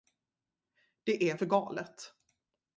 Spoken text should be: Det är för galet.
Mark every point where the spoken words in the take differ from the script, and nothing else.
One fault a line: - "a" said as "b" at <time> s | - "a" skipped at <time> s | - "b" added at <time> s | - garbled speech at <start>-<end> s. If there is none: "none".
none